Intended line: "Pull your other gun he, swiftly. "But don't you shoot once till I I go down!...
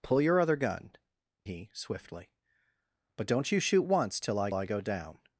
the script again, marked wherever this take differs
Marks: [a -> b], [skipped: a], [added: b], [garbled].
"Pull your other gun he, swiftly. "But don't you shoot once till I I go down!...